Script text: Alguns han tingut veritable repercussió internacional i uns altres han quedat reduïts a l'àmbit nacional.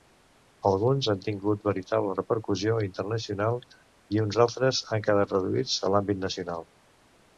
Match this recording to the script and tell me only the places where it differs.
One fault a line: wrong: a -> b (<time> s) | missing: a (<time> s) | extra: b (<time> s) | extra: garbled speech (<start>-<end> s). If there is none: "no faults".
no faults